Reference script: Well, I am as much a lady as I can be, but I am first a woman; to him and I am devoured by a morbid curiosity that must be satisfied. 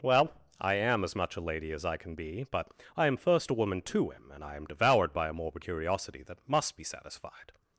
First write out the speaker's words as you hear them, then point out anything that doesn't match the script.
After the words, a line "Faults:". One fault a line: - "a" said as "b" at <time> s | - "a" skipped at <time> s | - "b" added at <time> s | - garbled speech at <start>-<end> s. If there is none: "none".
Well, I am as much a lady as I can be, but I am first a woman; to him and I am devoured by a morbid curiosity that must be satisfied.
Faults:
none